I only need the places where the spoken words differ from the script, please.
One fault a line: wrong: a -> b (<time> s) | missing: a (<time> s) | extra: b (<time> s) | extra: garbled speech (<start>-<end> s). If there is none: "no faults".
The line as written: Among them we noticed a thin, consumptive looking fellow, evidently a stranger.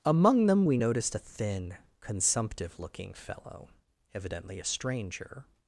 no faults